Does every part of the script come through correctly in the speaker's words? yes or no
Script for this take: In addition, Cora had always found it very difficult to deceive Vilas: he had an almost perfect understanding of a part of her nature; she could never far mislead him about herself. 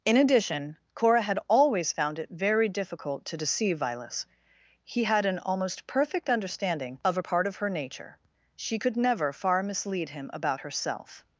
yes